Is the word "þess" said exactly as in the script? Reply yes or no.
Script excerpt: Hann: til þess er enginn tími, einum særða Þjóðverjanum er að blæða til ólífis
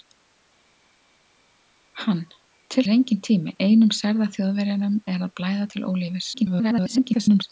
no